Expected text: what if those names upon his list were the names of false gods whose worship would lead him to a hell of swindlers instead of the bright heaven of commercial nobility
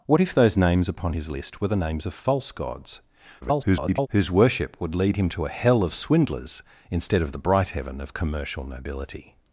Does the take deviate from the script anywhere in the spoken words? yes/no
yes